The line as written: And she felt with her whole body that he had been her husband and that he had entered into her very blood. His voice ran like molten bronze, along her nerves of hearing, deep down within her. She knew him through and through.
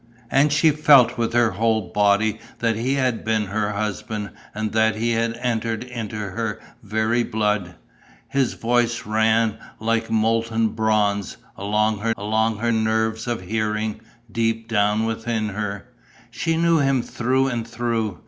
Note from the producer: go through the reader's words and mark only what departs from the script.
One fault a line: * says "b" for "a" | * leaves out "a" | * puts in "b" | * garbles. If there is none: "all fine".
* puts in "along her"